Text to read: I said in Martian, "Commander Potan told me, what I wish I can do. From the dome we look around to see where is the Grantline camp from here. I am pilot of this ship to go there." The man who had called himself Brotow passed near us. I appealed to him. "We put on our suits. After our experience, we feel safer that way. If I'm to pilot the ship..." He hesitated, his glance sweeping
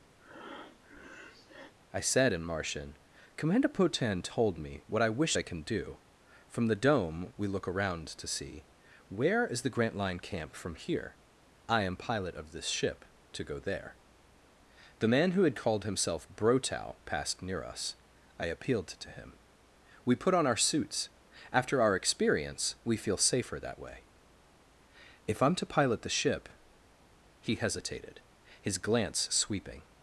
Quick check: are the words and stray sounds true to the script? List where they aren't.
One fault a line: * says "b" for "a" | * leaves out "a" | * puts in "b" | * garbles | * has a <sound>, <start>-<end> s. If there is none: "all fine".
* has a breath, 0.2-1.7 s